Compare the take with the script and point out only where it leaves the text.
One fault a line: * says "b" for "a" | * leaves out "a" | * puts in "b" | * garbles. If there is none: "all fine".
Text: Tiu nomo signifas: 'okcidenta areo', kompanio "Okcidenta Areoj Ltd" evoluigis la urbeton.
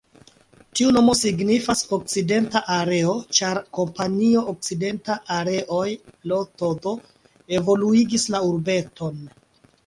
* puts in "ĉar"